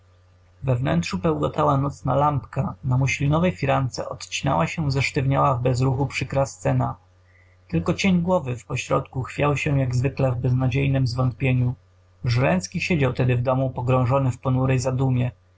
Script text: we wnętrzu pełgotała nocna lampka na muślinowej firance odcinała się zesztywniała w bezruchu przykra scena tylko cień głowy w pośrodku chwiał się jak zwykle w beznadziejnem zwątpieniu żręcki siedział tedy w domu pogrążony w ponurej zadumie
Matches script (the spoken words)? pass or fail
pass